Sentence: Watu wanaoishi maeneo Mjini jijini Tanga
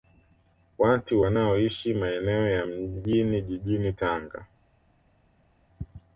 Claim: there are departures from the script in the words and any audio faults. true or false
true